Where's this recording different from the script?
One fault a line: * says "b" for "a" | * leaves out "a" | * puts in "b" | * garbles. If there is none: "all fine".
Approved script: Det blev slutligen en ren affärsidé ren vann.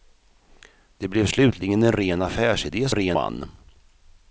all fine